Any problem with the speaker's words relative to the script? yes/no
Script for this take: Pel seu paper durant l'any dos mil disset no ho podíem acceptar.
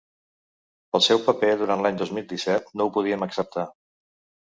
no